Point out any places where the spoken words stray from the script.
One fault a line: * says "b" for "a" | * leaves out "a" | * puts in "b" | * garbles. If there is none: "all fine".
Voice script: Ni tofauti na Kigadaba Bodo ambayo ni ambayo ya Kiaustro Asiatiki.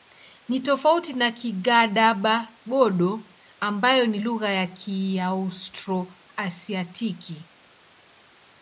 * says "lugha" for "ambayo"